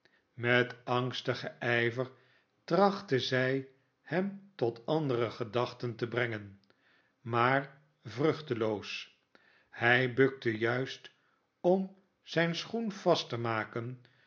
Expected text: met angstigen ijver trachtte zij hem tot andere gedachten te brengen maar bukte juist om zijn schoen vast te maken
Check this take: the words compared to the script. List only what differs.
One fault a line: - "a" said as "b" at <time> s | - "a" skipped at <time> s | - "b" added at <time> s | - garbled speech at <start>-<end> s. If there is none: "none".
- "vruchteloos hij" added at 8.0 s